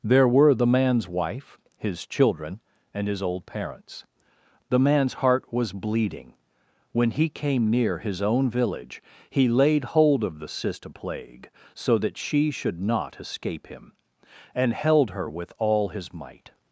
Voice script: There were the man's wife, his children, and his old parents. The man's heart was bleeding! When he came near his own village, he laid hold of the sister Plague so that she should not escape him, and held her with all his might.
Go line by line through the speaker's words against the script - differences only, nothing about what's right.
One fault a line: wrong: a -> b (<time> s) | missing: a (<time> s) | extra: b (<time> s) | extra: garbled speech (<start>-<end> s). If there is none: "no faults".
no faults